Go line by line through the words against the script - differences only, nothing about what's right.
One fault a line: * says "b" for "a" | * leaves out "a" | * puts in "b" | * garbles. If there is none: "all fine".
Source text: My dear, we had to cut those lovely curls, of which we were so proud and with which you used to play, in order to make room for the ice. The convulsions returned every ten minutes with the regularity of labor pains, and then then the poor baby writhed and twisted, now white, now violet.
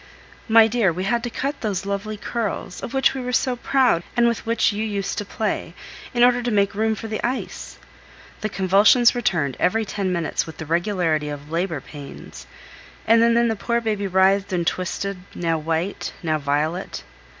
all fine